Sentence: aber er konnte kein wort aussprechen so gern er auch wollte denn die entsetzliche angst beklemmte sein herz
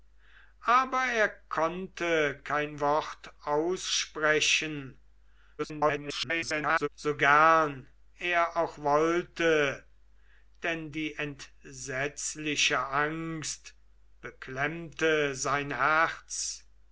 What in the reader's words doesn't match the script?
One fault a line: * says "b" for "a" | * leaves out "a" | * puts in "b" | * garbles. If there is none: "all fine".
* garbles